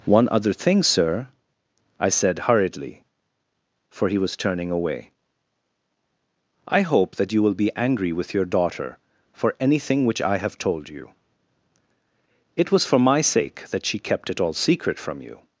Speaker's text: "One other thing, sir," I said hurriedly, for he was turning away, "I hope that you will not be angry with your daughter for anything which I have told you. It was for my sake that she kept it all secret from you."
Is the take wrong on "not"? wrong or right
wrong